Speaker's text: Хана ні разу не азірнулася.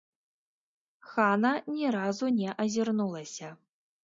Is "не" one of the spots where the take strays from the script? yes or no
no